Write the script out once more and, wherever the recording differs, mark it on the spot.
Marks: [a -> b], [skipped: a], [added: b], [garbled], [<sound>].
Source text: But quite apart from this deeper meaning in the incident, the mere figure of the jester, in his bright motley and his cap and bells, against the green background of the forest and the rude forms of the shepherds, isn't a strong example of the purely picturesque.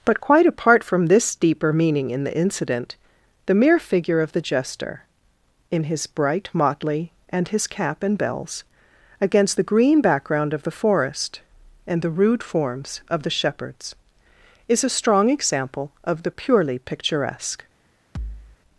But quite apart from this deeper meaning in the incident, the mere figure of the jester, in his bright motley and his cap and bells, against the green background of the forest and the rude forms of the shepherds, [isn't -> is] a strong example of the purely picturesque. [thud]